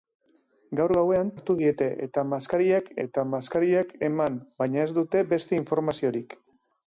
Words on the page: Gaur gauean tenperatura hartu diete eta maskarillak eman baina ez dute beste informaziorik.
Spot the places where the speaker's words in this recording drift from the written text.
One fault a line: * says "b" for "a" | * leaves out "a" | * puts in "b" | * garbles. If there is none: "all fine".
* leaves out "tenperatura"
* puts in "eta maskarillak"